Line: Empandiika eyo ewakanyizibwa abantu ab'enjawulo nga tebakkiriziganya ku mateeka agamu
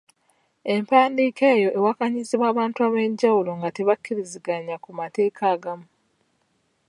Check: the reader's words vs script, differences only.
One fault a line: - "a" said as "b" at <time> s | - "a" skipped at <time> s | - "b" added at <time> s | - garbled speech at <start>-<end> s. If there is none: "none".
none